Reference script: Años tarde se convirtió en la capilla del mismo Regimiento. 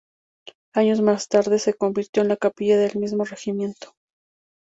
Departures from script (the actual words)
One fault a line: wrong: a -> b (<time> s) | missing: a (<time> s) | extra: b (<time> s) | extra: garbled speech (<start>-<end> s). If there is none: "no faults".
extra: más (1.0 s)